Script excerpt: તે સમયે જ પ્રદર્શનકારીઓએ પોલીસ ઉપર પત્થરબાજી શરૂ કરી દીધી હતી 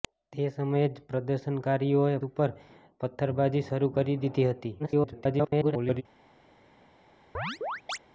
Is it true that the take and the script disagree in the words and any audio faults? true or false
true